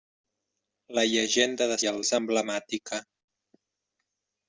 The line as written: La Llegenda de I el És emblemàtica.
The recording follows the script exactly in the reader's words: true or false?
true